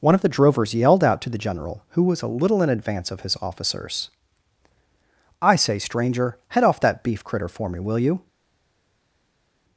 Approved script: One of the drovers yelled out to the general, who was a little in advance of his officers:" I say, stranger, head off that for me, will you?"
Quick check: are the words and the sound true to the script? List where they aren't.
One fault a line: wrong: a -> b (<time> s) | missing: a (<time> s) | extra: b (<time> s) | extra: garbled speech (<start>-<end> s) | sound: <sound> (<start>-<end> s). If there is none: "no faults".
extra: beef critter (7.0 s)